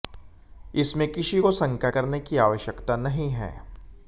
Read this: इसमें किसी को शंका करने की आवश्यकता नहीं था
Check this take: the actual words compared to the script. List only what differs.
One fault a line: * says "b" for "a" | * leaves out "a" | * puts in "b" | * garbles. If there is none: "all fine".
* says "है" for "था"